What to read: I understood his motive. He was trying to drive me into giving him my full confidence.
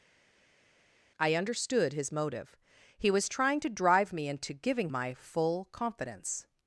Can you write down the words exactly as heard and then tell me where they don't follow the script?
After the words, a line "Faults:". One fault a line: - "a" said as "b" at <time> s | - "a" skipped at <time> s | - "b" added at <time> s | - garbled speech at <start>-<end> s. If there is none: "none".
I understood his motive. He was trying to drive me into giving my full confidence.
Faults:
- "him" skipped at 4.9 s